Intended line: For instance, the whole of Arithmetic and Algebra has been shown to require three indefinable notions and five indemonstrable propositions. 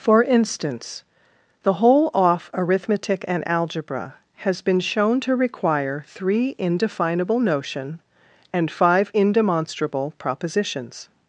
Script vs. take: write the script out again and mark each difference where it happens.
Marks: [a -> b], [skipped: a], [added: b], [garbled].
For instance, the whole [of -> off] Arithmetic and Algebra has been shown to require three indefinable [notions -> notion] and five indemonstrable propositions.